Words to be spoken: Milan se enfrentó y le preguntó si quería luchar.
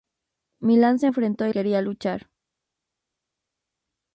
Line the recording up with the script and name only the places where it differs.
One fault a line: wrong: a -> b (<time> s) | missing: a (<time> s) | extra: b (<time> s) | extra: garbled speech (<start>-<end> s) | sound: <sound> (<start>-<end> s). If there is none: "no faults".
missing: le preguntó si (1.5 s)